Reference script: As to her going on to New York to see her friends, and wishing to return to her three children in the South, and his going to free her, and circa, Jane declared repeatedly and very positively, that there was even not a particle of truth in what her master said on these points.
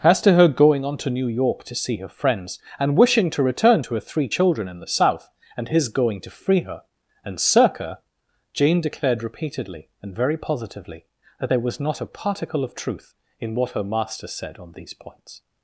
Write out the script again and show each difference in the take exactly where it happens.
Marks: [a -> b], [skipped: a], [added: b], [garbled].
As to her going on to New York to see her friends, and wishing to return to her three children in the South, and his going to free her, and circa, Jane declared repeatedly and very positively, that there was [skipped: even] not a particle of truth in what her master said on these points.